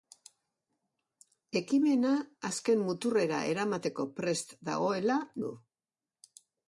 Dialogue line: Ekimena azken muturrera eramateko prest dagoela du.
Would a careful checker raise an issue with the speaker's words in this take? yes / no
no